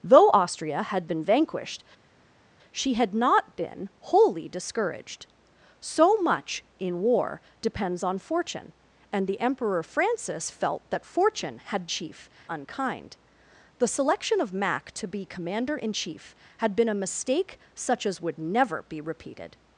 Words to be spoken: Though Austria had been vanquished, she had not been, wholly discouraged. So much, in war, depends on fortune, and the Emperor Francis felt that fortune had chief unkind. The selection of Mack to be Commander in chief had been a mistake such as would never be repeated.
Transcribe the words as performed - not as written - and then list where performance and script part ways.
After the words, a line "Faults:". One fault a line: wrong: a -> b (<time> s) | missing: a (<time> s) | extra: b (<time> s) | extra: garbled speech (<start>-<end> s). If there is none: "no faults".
Though Austria had been vanquished, she had not been, wholly discouraged. So much, in war, depends on fortune, and the Emperor Francis felt that fortune had chief unkind. The selection of Mack to be Commander in chief had been a mistake such as would never be repeated.
Faults:
no faults